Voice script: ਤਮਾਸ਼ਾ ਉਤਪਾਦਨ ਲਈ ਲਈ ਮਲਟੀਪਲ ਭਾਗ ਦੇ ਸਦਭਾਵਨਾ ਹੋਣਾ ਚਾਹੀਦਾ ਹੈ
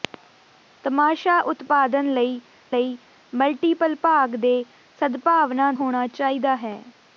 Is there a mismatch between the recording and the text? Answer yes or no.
no